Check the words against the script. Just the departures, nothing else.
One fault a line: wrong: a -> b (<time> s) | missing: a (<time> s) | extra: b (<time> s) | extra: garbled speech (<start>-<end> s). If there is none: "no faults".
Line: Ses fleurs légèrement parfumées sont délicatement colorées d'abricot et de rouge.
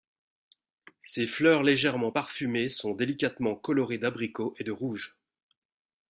no faults